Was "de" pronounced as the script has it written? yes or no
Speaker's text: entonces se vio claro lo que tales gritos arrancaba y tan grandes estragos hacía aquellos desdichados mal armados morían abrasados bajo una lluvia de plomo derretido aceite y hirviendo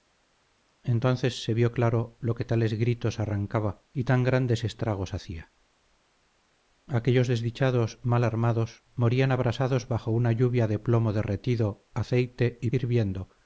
yes